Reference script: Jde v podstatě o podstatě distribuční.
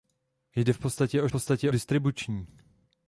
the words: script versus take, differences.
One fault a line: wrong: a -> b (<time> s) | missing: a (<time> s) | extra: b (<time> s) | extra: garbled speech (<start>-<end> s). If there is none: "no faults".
no faults